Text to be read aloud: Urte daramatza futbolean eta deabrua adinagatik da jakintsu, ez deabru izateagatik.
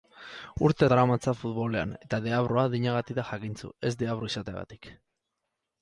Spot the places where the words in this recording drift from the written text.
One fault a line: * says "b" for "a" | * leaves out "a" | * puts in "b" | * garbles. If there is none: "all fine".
all fine